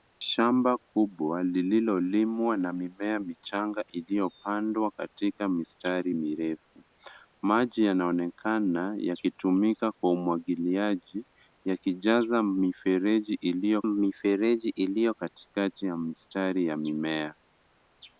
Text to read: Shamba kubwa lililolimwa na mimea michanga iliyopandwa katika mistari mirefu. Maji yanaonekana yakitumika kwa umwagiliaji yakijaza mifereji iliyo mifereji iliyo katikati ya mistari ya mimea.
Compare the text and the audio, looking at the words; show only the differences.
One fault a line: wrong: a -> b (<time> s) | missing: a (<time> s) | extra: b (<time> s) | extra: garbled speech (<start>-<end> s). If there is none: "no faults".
no faults